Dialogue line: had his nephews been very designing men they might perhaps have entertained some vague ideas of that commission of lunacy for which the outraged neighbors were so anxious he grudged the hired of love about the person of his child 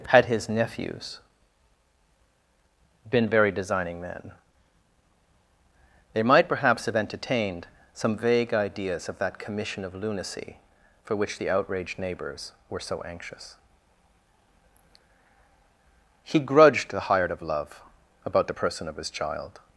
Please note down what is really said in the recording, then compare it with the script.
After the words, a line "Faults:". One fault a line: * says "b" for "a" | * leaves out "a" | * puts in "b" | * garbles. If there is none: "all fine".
had his nephews been very designing men they might perhaps have entertained some vague ideas of that commission of lunacy for which the outraged neighbors were so anxious he grudged the hired of love about the person of his child
Faults:
all fine